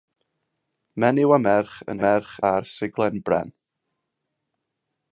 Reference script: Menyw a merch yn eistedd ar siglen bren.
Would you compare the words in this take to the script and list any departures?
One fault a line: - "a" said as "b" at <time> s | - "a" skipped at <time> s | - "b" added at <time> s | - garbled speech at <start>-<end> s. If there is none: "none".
- "eistedd" said as "merch" at 2.0 s